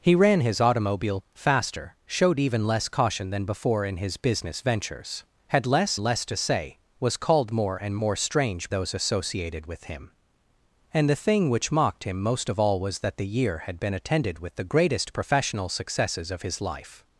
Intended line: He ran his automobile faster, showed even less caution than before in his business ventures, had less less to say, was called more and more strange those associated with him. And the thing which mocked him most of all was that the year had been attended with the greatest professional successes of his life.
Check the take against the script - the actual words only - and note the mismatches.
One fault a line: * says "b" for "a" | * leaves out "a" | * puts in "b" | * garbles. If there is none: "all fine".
all fine